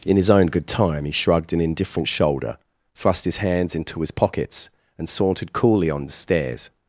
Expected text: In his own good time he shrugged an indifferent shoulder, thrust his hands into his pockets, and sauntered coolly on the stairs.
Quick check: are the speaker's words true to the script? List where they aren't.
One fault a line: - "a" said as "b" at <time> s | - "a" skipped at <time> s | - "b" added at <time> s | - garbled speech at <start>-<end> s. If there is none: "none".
none